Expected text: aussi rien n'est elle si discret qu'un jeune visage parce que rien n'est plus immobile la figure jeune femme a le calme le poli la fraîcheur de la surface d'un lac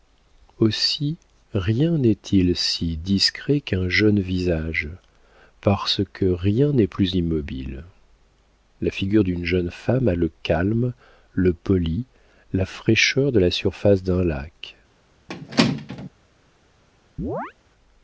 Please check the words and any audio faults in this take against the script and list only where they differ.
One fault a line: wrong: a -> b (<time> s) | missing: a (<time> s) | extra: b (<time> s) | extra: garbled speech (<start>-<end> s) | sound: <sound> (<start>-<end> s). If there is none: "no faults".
wrong: elle -> il (2.3 s)
extra: d'une (9.2 s)
sound: squeak (15.3-16.1 s)
sound: chirp (17.2-17.5 s)